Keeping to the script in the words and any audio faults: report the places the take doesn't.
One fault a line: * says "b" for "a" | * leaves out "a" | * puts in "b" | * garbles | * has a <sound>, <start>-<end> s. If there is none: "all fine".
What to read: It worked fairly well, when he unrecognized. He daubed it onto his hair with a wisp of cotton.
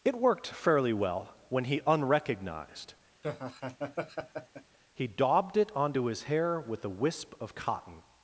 * has a laugh, 3.2-4.8 s